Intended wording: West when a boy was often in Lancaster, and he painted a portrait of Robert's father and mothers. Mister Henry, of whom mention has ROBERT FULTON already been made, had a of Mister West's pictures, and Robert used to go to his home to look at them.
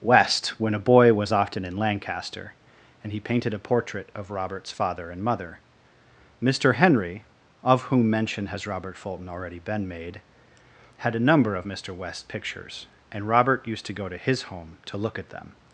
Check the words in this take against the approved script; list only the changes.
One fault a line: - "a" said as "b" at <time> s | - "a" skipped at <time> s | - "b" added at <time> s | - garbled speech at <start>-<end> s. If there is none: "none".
- "mothers" said as "mother" at 5.2 s
- "number" added at 11.2 s